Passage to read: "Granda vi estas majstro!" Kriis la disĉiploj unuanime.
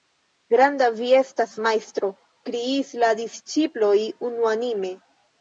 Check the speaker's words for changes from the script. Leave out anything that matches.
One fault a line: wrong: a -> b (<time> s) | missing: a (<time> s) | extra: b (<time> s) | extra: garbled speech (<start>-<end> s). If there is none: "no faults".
no faults